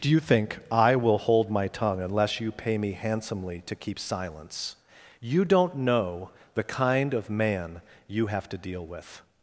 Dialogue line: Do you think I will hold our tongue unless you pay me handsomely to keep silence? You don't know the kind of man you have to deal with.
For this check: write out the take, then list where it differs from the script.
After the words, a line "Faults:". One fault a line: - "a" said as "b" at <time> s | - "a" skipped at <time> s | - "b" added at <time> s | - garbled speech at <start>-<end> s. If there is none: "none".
Do you think I will hold my tongue unless you pay me handsomely to keep silence? You don't know the kind of man you have to deal with.
Faults:
- "our" said as "my" at 1.5 s